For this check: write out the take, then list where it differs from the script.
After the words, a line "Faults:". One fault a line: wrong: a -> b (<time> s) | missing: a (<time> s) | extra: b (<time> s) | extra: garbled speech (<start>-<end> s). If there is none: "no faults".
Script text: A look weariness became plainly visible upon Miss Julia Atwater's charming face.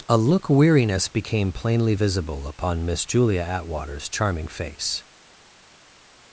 A look weariness became plainly visible upon Miss Julia Atwater's charming face.
Faults:
no faults